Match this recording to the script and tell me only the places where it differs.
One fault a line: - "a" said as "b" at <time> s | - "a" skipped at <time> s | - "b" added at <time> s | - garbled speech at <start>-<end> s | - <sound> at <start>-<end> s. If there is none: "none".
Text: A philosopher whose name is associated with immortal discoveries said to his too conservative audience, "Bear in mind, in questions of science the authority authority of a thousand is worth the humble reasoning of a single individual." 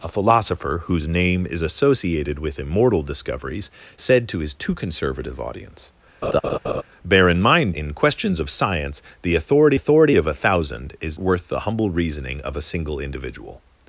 - laugh at 6.2-6.8 s